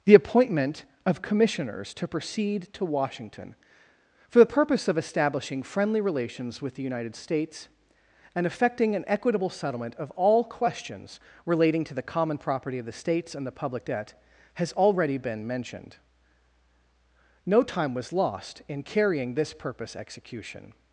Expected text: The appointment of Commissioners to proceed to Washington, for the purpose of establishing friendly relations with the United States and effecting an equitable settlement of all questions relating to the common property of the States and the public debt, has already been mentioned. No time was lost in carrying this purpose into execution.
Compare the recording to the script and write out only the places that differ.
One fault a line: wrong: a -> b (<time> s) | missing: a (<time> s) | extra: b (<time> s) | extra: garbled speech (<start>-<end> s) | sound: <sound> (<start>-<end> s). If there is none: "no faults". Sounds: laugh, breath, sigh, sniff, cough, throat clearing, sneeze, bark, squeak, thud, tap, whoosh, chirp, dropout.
missing: into (20.0 s)